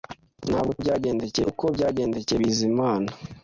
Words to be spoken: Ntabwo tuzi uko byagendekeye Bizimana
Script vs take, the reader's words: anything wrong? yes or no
yes